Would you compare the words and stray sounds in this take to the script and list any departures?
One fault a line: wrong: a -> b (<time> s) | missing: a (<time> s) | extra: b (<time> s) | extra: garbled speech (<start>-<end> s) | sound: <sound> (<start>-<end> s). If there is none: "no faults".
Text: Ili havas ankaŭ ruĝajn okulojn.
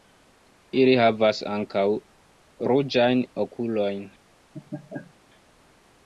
sound: laugh (4.5-5.1 s)